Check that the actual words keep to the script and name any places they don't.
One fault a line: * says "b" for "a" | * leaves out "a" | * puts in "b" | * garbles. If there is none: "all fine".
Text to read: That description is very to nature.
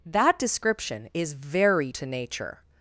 all fine